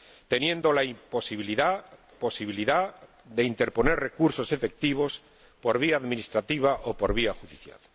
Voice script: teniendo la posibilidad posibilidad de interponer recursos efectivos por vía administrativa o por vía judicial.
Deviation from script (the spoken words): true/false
false